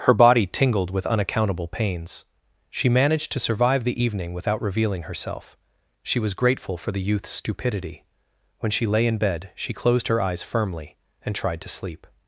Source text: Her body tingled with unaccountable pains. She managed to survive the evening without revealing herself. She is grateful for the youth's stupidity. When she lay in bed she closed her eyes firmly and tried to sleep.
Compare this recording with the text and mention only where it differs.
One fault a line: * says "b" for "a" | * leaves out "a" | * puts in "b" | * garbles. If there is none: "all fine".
* says "was" for "is"